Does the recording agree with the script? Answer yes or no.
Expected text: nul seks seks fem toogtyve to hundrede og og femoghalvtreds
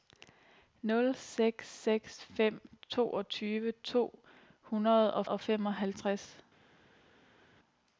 yes